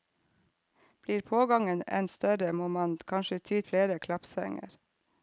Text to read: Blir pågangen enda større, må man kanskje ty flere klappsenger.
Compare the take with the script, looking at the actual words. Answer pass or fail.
pass